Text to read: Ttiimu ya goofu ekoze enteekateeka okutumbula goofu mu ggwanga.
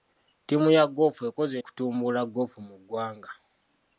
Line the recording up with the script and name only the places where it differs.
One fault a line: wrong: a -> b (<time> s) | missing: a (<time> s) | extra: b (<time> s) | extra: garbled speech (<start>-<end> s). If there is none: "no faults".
missing: enteekateeka (1.6 s)